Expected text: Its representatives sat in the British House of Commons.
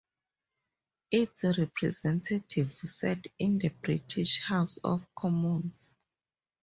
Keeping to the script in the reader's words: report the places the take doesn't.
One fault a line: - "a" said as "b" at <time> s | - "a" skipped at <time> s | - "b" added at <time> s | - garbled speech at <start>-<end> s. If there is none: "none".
none